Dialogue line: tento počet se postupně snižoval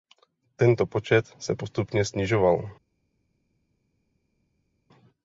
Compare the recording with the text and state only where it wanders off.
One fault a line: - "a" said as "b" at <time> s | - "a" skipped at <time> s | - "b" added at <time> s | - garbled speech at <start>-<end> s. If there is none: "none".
none